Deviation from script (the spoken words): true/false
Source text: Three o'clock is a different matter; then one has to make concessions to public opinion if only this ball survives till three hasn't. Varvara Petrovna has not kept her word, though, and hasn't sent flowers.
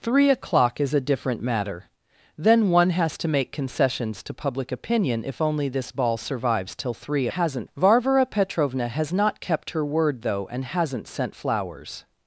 false